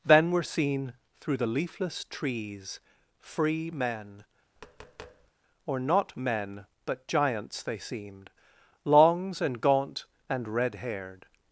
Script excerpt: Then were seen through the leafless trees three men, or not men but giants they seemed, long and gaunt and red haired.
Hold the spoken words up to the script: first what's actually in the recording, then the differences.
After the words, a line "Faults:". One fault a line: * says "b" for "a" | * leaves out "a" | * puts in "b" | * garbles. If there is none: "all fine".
Then were seen through the leafless trees free men, or not men but giants they seemed, longs and gaunt and red haired.
Faults:
* says "free" for "three"
* says "longs" for "long"